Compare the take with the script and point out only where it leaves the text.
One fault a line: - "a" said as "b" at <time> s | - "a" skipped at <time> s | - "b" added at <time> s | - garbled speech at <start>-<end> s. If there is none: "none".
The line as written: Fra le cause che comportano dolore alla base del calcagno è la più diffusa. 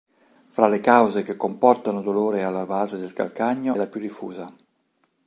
- "è" skipped at 3.8 s